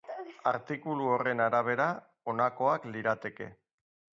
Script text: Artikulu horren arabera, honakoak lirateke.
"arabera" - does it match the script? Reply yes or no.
yes